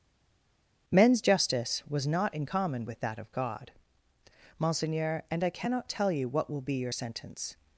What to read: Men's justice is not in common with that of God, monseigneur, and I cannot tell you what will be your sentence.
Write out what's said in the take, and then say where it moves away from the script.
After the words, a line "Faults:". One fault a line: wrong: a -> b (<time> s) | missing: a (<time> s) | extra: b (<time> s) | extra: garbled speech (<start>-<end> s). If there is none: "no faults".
Men's justice was not in common with that of God, monseigneur, and I cannot tell you what will be your sentence.
Faults:
wrong: is -> was (1.9 s)